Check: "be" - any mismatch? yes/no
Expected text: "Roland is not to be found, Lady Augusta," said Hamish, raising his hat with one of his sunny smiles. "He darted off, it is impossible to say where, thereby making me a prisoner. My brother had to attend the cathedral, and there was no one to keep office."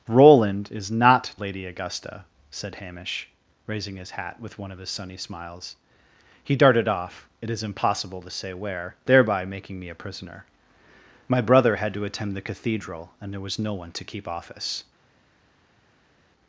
yes